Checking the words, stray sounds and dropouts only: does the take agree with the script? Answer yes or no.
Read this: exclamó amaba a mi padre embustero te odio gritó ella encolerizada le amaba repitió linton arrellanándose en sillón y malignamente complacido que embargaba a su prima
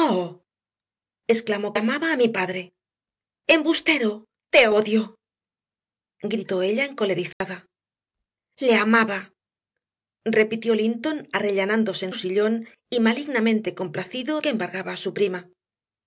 no